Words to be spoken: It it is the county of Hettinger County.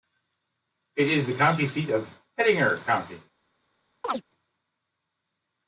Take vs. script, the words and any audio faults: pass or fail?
fail